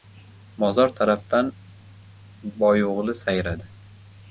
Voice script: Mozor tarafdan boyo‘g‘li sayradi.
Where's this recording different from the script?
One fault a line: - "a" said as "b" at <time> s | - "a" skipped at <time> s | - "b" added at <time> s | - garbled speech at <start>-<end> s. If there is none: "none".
none